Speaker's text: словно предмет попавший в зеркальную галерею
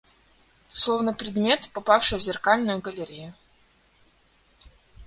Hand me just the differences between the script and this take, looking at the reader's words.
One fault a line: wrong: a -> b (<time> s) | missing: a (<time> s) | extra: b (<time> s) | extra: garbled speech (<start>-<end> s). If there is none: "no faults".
no faults